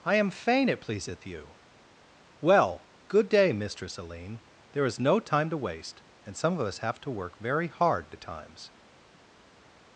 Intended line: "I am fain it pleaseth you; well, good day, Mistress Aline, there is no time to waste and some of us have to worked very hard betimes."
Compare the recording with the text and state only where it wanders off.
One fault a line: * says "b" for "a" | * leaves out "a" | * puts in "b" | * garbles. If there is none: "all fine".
* says "work" for "worked"